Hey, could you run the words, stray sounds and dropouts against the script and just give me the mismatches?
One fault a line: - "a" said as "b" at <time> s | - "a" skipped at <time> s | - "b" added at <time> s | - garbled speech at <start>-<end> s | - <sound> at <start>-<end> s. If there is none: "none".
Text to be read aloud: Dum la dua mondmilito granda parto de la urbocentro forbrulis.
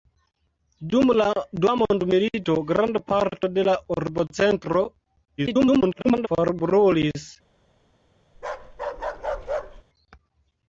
- garbled speech at 5.4-6.3 s
- bark at 8.3-9.8 s